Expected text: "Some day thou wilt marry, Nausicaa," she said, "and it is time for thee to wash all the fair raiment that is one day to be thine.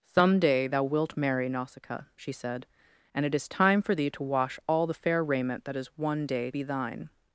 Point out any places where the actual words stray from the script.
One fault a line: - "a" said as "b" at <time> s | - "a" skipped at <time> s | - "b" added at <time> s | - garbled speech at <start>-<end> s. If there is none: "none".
- "to" skipped at 6.5 s